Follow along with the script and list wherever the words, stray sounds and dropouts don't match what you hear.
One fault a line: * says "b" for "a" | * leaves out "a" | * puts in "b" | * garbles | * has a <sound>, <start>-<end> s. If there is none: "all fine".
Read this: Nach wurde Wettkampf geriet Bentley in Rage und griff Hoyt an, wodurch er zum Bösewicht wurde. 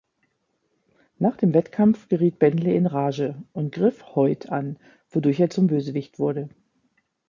* says "dem" for "wurde"